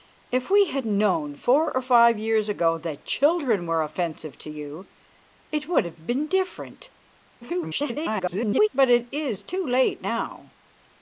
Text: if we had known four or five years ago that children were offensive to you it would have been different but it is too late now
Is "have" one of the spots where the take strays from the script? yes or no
no